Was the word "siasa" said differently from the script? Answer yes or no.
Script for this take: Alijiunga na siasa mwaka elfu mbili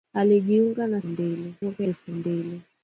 yes